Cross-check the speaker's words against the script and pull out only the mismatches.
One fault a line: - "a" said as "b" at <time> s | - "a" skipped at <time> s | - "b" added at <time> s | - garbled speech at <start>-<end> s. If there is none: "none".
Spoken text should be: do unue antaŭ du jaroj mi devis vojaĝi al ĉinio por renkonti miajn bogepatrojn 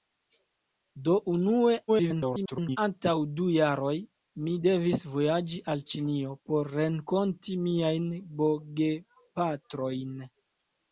- garbled speech at 1.9-2.8 s